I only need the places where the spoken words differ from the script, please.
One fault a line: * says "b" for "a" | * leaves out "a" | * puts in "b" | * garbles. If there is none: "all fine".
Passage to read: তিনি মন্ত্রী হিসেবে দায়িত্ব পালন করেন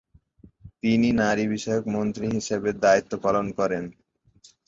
* puts in "নারী বিষয়ক"